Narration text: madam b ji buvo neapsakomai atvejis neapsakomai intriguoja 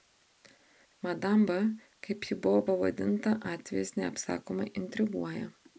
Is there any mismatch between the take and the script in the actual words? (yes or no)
yes